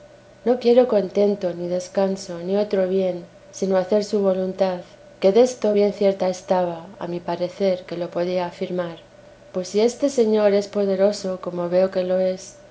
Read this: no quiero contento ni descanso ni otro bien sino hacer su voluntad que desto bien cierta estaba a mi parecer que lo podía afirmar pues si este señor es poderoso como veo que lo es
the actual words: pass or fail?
pass